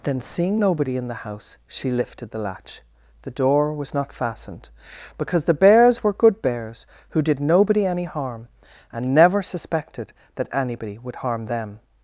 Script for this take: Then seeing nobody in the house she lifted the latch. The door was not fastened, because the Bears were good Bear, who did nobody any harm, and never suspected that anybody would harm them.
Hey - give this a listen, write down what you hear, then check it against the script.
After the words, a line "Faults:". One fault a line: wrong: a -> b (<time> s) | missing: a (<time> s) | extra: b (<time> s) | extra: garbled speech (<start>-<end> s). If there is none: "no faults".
Then seeing nobody in the house she lifted the latch. The door was not fastened, because the Bears were good Bears, who did nobody any harm, and never suspected that anybody would harm them.
Faults:
wrong: Bear -> Bears (6.4 s)